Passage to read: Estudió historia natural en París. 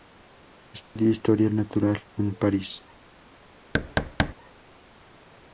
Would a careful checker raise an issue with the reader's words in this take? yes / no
no